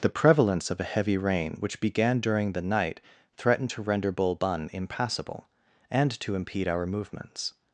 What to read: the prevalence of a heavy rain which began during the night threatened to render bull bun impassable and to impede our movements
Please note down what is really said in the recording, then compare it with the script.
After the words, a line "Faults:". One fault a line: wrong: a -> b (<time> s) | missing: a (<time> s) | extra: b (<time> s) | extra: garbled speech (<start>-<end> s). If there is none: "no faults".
the prevalence of a heavy rain which began during the night threatened to render bull bun impassable and to impede our movements
Faults:
no faults